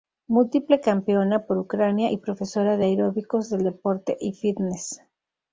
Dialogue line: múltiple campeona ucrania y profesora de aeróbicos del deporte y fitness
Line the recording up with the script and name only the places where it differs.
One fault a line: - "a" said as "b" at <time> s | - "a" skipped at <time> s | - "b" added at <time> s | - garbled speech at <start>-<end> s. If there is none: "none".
- "por" added at 1.4 s